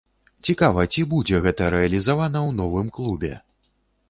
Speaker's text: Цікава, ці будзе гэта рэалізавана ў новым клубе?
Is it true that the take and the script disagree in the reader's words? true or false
false